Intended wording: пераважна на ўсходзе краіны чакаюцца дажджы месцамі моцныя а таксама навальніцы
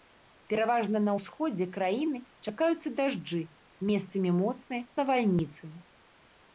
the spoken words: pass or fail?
fail